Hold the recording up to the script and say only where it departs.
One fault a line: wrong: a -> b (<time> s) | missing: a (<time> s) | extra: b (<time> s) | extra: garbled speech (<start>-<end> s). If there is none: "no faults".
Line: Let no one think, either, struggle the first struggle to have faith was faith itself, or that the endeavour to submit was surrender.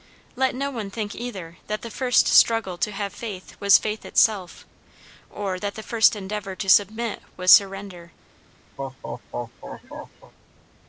wrong: struggle -> that (1.7 s)
extra: first (5.8 s)